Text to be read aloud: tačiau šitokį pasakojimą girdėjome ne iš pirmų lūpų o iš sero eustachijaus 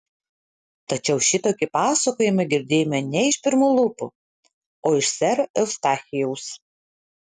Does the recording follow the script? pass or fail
pass